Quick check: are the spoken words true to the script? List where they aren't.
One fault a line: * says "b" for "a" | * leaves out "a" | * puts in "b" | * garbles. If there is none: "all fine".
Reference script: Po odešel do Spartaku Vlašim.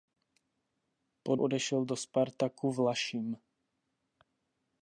all fine